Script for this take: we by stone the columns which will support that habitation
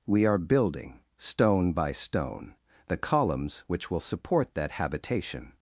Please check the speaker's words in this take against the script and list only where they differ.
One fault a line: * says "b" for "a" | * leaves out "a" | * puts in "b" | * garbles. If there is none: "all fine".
* puts in "are building stone"